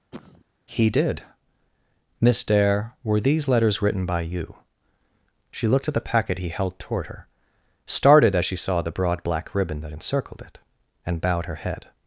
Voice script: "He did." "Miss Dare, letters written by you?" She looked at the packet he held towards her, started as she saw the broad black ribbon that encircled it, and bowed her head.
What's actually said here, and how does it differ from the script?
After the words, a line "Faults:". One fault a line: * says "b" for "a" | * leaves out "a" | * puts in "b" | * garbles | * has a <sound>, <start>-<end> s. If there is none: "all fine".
"He did." "Miss Dare, were these letters written by you?" She looked at the packet he held toward her, started as she saw the broad black ribbon that encircled it, and bowed her head.
Faults:
* has a cough, 0.1-0.4 s
* puts in "were these"
* says "toward" for "towards"